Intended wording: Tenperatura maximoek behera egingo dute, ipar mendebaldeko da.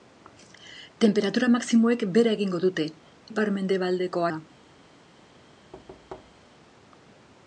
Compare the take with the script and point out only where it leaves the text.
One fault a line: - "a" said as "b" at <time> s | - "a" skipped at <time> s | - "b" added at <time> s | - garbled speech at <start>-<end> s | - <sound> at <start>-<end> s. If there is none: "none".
- thud at 5.7-6.6 s